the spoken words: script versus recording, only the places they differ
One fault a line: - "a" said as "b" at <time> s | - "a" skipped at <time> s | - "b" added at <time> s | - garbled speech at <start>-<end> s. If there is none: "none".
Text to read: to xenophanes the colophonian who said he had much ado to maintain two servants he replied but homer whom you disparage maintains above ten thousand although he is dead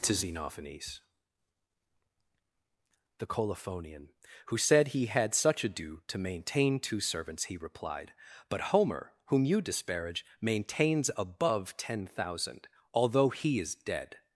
- "much" said as "such" at 5.3 s